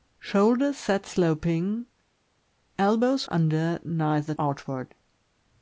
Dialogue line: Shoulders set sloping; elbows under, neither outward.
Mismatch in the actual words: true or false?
false